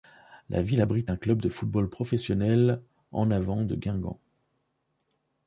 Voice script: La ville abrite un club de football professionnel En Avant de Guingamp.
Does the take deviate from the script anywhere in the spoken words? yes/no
no